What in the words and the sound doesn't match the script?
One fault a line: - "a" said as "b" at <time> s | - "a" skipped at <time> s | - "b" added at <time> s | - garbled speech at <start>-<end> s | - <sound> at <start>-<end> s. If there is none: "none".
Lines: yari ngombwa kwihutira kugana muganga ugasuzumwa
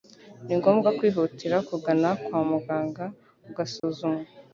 - "yari" said as "ni" at 0.5 s
- "kwa" added at 2.2 s
- dropout at 3.8-3.8 s